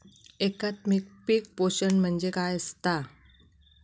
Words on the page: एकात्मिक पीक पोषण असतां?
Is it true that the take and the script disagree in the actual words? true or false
true